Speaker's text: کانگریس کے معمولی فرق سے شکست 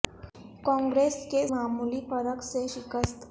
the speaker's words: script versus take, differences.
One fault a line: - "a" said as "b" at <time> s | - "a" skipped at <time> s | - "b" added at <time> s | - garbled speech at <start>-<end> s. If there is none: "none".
none